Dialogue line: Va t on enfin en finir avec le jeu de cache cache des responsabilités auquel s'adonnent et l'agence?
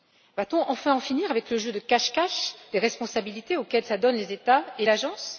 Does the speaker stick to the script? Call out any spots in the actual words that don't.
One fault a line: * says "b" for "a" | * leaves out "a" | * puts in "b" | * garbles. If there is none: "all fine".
* puts in "les États"